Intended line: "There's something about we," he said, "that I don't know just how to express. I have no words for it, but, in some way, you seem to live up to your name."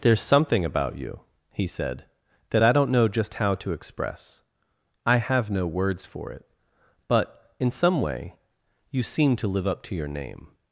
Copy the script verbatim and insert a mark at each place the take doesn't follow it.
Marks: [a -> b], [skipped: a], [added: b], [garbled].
"There's something about [we," -> you] he said, "that I don't know just how to express. I have no words for it, but, in some way, you seem to live up to your name."